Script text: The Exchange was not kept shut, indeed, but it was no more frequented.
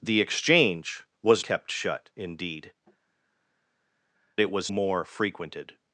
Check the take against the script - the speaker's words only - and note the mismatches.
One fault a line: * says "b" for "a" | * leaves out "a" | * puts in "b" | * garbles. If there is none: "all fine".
* leaves out "not"
* leaves out "but"
* leaves out "no"